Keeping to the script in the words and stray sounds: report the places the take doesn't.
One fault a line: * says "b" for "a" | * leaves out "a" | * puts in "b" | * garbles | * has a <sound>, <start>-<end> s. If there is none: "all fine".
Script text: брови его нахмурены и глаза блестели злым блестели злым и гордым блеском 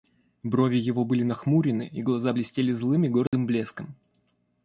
* puts in "были"
* leaves out "блестели злым"
* has a dropout, 3.3-3.3 s